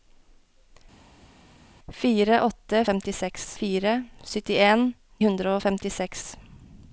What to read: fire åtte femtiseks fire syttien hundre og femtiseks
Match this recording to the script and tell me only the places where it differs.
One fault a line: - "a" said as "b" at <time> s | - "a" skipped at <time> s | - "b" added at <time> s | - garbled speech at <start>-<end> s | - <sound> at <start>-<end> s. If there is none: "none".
none